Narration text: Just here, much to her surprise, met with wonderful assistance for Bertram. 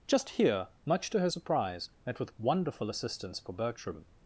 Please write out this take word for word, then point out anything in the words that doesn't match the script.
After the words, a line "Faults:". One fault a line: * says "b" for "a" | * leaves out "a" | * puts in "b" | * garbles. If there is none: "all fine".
Just here, much to her surprise, met with wonderful assistance for Bertram.
Faults:
all fine